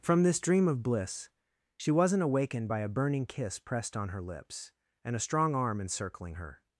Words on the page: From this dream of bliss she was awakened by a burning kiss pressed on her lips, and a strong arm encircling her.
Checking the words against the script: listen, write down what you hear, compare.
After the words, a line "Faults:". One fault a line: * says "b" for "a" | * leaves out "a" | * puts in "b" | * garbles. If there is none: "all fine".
From this dream of bliss she wasn't awakened by a burning kiss pressed on her lips, and a strong arm encircling her.
Faults:
* says "wasn't" for "was"